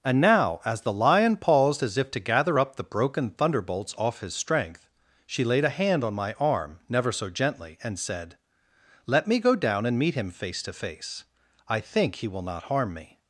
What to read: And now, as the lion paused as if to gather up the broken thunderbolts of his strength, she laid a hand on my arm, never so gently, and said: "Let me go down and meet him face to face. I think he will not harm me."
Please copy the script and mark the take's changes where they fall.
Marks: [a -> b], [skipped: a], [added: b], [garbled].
And now, as the lion paused as if to gather up the broken thunderbolts [of -> off] his strength, she laid a hand on my arm, never so gently, and said: "Let me go down and meet him face to face. I think he will not harm me."